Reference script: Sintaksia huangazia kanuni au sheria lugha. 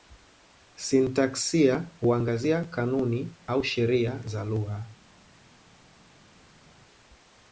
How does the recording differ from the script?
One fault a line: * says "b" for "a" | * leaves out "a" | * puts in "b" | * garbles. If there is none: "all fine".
* puts in "za"